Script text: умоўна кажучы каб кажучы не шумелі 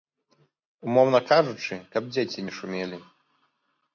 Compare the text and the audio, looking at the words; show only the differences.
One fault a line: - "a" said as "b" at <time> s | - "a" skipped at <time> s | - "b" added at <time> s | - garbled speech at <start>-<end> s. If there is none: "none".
- "кажучы" said as "дзеці" at 2.1 s